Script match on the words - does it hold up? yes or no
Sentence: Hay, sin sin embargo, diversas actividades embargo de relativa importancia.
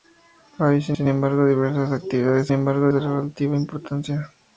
yes